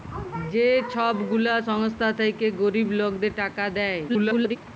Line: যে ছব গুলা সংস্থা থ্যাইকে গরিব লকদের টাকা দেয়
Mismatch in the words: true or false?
true